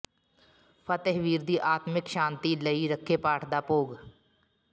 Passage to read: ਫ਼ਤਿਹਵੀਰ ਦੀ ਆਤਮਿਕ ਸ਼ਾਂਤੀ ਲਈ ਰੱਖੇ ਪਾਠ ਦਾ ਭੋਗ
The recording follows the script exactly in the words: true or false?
true